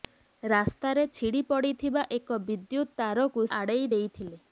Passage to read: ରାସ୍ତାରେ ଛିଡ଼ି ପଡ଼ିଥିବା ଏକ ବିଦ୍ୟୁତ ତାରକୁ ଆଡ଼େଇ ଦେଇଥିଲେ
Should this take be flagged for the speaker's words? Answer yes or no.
no